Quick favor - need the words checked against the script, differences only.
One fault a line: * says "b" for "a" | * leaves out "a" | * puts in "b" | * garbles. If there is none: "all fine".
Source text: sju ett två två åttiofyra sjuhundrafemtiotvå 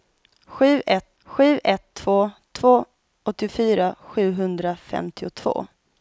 * puts in "sju ett"